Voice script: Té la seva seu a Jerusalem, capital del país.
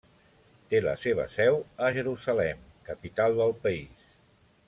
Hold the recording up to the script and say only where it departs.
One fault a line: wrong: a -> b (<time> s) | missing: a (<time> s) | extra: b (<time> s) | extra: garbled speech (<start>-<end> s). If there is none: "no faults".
no faults